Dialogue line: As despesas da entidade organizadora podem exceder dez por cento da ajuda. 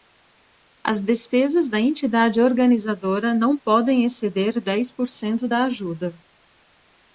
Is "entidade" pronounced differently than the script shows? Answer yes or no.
no